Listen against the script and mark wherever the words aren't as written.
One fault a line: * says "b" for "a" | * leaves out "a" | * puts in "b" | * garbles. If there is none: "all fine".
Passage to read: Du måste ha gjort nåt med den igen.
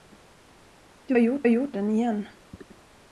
* says "gjort" for "måste"
* leaves out "nåt med"